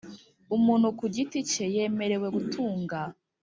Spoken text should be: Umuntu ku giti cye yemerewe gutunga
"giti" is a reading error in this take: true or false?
false